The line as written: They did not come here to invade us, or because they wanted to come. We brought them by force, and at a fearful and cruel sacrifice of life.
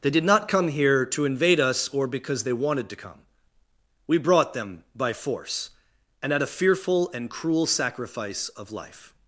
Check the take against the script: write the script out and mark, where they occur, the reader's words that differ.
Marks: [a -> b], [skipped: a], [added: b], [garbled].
They did not come here to invade us, or because they wanted to come. We brought them by force, and at a fearful and cruel sacrifice of life.